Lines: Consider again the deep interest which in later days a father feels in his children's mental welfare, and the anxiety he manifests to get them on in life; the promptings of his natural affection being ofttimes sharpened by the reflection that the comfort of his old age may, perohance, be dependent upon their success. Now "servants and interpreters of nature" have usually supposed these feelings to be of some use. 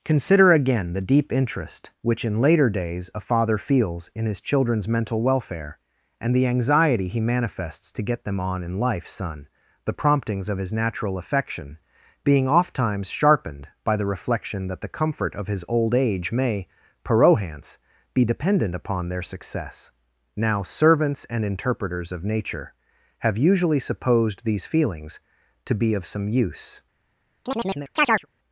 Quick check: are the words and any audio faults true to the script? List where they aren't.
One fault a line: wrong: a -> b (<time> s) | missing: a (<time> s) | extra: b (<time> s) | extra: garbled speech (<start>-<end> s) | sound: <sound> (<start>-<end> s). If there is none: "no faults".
extra: son (9.1 s)
sound: chirp (27.5-28.3 s)